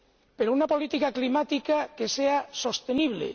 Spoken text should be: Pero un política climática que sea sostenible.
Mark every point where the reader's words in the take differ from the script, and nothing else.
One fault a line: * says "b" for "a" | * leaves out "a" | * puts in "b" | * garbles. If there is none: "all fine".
* says "una" for "un"